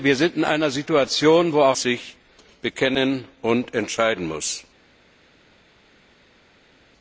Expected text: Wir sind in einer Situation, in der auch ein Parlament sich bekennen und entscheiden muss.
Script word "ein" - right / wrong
wrong